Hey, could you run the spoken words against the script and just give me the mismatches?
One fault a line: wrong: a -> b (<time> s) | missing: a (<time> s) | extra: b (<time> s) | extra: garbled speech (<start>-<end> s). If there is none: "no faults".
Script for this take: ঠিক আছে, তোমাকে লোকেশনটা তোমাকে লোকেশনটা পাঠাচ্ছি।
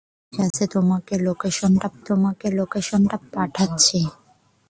no faults